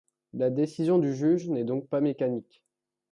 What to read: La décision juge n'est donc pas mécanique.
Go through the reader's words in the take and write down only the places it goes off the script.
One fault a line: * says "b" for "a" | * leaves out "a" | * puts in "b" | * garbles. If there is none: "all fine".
* puts in "du"